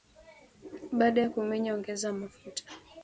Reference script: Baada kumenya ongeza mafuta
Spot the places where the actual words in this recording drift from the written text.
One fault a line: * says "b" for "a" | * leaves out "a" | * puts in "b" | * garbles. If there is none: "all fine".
* puts in "ya"